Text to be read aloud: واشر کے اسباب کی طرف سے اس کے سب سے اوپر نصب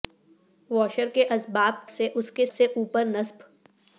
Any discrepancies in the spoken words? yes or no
yes